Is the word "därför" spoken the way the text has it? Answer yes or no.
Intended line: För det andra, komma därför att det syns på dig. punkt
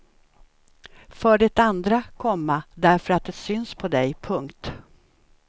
yes